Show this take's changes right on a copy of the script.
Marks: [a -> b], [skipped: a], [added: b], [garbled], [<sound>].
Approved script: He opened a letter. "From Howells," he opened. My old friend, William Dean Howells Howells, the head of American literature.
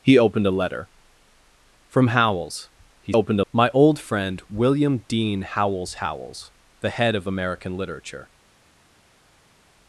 He opened a letter. "From Howells," he opened. My old friend, William Dean Howells Howells, the head of American literature.